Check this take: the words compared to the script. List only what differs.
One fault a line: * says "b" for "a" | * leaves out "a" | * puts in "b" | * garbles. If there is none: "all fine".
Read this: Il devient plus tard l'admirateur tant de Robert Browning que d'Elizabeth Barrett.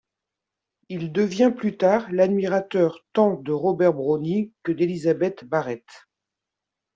all fine